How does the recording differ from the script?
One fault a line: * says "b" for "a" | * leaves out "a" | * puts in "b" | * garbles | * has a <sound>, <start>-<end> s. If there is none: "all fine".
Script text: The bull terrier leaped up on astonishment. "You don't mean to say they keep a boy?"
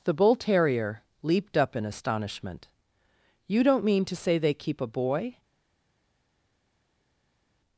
* says "in" for "on"